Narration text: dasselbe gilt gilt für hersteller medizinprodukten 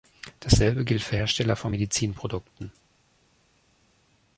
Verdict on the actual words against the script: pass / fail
fail